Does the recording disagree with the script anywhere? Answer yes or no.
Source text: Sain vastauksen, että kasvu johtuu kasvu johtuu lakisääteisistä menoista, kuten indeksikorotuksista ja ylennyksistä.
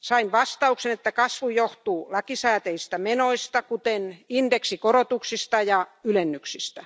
yes